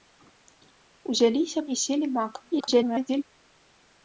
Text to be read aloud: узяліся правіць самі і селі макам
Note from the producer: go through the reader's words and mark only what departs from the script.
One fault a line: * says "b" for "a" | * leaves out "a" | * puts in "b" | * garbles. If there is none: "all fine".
* leaves out "правіць самі"
* garbles